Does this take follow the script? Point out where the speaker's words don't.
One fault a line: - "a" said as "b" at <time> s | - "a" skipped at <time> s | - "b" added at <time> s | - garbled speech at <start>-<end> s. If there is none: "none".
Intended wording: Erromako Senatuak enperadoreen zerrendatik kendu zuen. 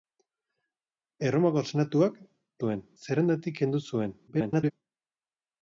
- "enperadoreen" said as "zuen" at 2.6 s
- garbled speech at 4.3-4.7 s